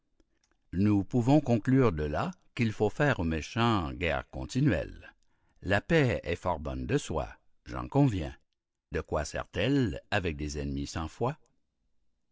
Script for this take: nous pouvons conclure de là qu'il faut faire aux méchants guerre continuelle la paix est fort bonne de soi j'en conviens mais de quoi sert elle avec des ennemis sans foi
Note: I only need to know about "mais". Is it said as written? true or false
false